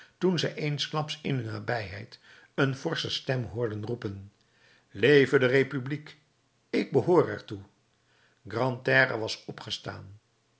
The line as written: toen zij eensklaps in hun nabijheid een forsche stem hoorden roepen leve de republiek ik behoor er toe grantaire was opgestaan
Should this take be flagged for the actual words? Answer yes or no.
no